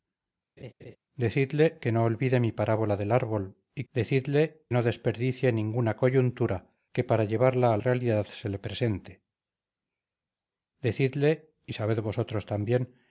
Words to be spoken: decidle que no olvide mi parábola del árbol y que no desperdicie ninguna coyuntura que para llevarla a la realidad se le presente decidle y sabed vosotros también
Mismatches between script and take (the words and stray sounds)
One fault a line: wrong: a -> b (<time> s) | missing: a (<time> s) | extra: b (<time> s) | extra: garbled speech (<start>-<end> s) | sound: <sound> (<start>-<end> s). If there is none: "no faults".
sound: laugh (0.6-1.0 s)
wrong: que -> decidle (3.9 s)
missing: la (7.8 s)